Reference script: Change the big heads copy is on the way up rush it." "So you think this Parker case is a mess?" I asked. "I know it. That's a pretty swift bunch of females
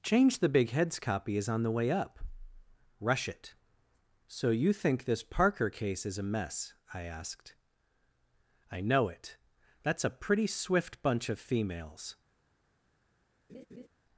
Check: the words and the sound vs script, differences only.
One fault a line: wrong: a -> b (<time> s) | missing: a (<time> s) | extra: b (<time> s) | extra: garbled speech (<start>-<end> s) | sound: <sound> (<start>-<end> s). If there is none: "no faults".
sound: laugh (13.5-13.9 s)